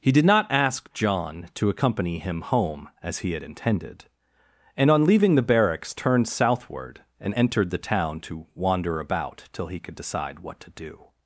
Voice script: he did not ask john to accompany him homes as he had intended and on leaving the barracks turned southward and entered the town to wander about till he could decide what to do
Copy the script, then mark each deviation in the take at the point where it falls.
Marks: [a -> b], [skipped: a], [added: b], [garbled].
he did not ask john to accompany him [homes -> home] as he had intended and on leaving the barracks turned southward and entered the town to wander about till he could decide what to do